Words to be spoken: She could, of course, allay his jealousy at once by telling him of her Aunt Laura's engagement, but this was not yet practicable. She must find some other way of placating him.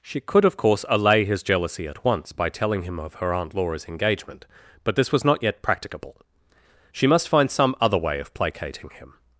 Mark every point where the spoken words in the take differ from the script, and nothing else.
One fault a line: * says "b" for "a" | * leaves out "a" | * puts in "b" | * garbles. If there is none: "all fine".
all fine